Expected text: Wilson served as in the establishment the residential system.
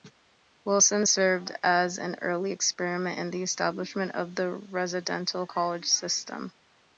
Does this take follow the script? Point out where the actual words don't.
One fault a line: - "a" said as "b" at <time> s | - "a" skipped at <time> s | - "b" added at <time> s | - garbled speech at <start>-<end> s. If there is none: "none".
- "an early experiment" added at 2.0 s
- "of" added at 4.1 s
- "college" added at 5.4 s